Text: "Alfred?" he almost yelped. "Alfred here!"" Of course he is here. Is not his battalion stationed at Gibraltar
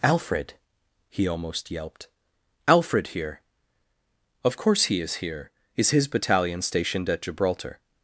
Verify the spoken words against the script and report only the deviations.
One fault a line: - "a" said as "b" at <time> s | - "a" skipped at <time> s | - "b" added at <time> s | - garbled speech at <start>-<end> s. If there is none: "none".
- "not" skipped at 5.9 s